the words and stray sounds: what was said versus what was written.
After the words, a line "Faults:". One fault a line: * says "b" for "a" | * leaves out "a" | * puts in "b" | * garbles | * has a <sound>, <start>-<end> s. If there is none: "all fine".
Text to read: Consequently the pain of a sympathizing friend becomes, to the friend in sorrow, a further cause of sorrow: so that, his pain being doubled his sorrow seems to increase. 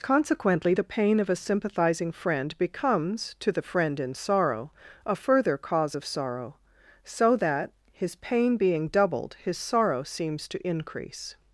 Consequently the pain of a sympathizing friend becomes, to the friend in sorrow, a further cause of sorrow: so that, his pain being doubled his sorrow seems to increase.
Faults:
all fine